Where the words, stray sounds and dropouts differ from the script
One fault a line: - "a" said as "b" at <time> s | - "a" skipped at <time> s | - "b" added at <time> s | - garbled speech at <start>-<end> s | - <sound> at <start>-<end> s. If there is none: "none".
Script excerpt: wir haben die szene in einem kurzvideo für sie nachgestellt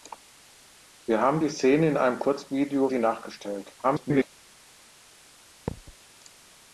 - "für" skipped at 2.9 s
- garbled speech at 3.8-4.3 s
- thud at 5.7-6.0 s